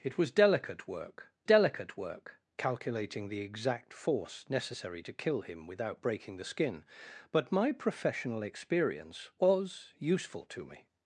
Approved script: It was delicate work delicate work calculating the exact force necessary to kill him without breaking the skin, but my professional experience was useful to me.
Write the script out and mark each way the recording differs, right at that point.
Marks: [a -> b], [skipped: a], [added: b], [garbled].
It was delicate work delicate work calculating the exact force necessary to kill him without breaking the skin, but my professional experience was useful to me.